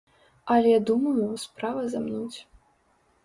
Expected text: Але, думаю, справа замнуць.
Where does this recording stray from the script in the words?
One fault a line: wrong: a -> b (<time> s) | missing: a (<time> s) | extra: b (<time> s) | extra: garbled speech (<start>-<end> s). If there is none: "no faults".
no faults